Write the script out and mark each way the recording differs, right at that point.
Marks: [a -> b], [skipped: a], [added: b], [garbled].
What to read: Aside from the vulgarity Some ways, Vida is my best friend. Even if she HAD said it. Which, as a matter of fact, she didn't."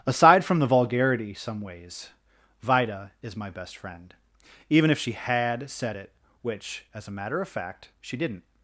Aside from the vulgarity Some ways, Vida is my best friend. Even if she HAD said it. Which, as a matter of fact, she didn't."